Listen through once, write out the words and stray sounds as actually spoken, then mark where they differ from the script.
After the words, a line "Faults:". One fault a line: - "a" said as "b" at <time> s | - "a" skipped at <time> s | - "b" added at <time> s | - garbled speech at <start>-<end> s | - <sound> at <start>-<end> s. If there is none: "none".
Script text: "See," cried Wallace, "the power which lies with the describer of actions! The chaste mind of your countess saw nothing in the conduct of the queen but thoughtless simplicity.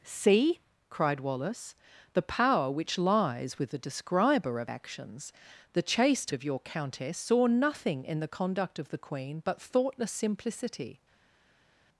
"See," cried Wallace, "the power which lies with the describer of actions! The chaste of your countess saw nothing in the conduct of the queen but thoughtless simplicity.
Faults:
- "mind" skipped at 6.3 s